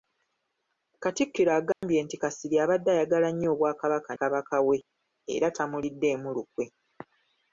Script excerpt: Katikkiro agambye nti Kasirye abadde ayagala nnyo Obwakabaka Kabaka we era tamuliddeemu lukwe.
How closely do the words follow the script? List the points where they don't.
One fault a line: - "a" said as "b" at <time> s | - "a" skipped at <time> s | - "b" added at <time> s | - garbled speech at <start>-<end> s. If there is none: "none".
none